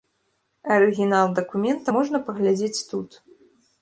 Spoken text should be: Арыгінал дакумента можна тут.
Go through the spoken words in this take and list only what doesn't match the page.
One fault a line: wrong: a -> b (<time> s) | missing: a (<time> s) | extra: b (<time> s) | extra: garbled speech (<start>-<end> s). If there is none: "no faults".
extra: паглядзець (2.3 s)